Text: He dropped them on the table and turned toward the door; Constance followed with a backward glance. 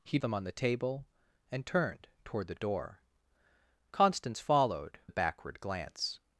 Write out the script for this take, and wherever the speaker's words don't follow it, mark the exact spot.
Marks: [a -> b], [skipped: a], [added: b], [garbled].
He [skipped: dropped] them on the table and turned toward the door; Constance followed [skipped: with] a backward glance.